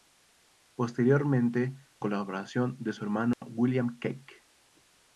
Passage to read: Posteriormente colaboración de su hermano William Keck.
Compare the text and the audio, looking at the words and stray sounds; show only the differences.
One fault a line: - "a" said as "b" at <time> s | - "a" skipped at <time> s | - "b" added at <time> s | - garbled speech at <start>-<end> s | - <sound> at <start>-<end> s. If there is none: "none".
- dropout at 3.3-3.4 s